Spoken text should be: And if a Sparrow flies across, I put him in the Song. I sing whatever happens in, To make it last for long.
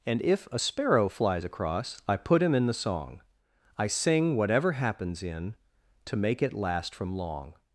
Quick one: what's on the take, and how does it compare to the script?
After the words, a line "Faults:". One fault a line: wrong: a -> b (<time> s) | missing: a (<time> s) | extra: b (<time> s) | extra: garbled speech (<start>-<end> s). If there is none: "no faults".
And if a Sparrow flies across, I put him in the Song. I sing whatever happens in, To make it last from long.
Faults:
wrong: for -> from (6.9 s)